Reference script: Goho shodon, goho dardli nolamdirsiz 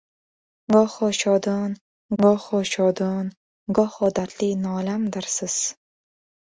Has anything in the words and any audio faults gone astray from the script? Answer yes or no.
yes